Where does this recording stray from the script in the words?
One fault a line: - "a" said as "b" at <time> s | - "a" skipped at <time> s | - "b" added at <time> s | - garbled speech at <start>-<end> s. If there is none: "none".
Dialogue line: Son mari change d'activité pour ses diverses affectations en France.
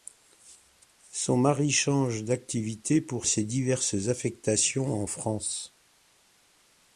none